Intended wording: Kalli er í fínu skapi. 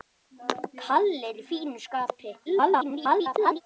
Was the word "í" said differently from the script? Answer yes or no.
no